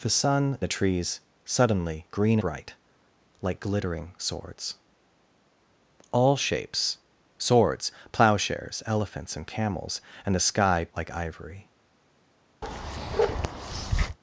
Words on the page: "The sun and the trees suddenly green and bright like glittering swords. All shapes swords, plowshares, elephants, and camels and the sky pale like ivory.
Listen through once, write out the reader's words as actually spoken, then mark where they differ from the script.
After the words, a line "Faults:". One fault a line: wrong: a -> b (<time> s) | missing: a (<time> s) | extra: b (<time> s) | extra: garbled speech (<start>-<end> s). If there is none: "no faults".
"The sun the trees suddenly green bright like glittering swords. All shapes swords, plowshares, elephants, and camels and the sky like ivory.
Faults:
missing: and (0.6 s)
missing: and (2.4 s)
missing: pale (10.9 s)